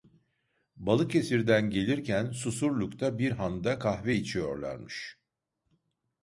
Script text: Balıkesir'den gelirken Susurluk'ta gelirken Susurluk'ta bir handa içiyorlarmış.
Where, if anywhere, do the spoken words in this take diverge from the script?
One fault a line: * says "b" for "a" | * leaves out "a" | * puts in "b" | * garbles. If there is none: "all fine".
* leaves out "gelirken Susurluk'ta"
* puts in "kahve"